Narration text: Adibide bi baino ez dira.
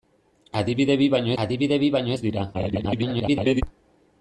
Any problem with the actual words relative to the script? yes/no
yes